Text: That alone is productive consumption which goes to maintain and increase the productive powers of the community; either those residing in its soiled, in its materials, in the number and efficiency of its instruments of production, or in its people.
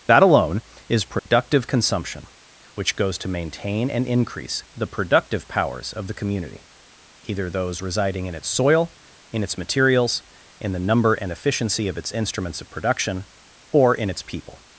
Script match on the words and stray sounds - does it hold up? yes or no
no